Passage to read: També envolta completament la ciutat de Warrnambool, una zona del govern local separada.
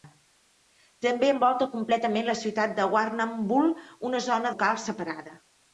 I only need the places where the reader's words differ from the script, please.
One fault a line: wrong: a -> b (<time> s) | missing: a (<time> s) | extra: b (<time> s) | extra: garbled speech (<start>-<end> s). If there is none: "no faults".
missing: del govern (4.5 s)